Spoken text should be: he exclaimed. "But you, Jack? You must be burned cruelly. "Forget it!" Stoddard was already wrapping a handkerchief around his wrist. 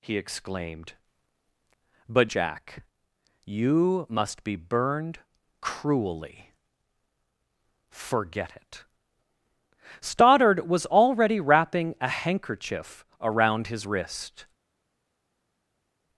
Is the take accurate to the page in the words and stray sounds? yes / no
no